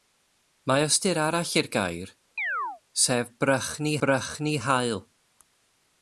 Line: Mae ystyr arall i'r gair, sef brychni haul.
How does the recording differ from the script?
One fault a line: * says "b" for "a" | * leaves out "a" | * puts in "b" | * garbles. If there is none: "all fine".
* puts in "brychni"